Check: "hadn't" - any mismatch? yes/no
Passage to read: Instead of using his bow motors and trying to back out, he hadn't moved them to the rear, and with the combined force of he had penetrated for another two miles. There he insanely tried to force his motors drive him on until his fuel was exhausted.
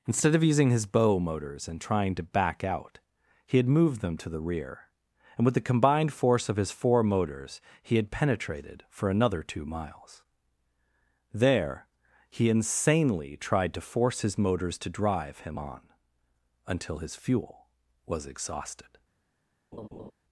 yes